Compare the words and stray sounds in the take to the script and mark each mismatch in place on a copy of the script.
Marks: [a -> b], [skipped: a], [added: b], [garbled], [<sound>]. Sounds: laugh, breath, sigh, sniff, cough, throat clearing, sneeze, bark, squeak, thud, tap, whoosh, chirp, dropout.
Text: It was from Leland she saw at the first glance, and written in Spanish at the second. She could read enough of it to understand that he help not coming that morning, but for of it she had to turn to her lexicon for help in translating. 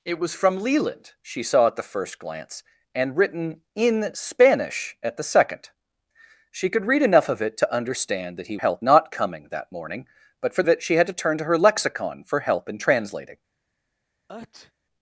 It was from Leland she saw at the first glance, and written in Spanish at the second. She could read enough of it to understand that he help not coming that morning, but for of it she had to turn to her lexicon for help in translating. [sneeze]